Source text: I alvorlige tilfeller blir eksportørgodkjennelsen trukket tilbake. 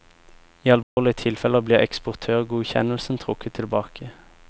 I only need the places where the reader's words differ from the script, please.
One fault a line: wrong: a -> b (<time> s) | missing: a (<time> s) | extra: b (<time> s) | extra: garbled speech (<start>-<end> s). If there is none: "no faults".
no faults